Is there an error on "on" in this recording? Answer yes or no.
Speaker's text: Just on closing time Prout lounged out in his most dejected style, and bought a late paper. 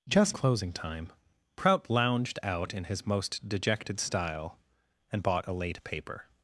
yes